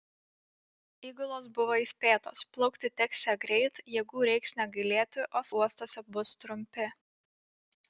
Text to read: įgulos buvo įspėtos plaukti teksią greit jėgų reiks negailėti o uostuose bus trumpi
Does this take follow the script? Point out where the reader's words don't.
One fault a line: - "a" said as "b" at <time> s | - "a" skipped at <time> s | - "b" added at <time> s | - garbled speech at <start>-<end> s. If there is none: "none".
none